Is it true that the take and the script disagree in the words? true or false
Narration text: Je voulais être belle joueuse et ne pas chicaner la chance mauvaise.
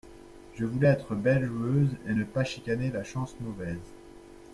false